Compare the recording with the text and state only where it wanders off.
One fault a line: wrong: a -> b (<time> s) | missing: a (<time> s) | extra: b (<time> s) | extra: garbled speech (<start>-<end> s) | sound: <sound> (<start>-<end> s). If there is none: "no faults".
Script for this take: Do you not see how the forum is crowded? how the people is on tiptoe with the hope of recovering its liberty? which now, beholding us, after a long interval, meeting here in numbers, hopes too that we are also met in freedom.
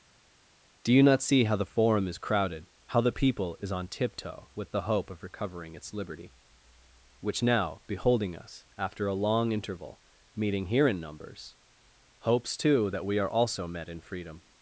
no faults